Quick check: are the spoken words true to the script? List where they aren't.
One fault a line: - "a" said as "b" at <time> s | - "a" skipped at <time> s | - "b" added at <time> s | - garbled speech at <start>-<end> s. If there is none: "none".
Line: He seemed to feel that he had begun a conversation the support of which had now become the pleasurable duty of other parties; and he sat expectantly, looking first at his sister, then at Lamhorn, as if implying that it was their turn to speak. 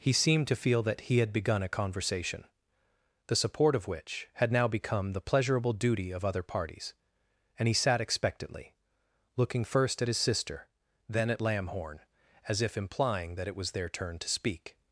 none